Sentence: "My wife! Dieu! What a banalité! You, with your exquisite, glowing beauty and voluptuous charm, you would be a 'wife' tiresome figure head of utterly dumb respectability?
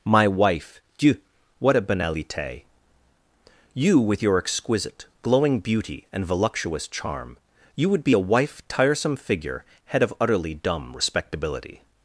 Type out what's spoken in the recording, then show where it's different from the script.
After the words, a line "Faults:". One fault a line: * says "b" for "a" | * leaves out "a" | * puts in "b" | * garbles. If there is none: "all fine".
"My wife! Dieu! What a banalité! You, with your exquisite, glowing beauty and voluptuous charm, you would be a 'wife' tiresome figure head of utterly dumb respectability?
Faults:
all fine